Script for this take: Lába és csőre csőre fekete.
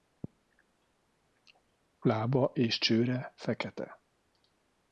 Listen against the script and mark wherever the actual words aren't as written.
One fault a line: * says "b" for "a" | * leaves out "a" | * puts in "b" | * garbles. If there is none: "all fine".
* leaves out "csőre"